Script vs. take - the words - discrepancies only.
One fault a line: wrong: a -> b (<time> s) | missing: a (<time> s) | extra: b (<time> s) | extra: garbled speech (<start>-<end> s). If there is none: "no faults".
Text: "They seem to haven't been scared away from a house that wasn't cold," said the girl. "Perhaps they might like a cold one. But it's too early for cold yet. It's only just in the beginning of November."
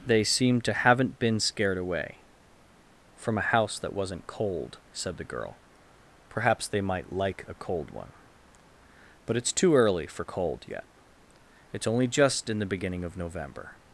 no faults